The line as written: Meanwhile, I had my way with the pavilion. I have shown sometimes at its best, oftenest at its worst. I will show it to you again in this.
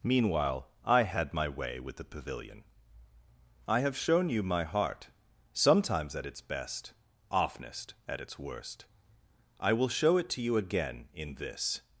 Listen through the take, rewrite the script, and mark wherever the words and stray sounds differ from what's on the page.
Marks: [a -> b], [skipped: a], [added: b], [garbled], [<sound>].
Meanwhile, I had my way with the pavilion. I have shown [added: you my heart] sometimes at its best, oftenest at its worst. I will show it to you again in this.